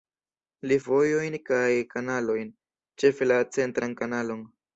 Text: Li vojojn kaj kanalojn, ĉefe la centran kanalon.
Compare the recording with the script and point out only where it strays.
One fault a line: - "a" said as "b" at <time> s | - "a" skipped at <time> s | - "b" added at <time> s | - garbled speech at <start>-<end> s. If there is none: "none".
none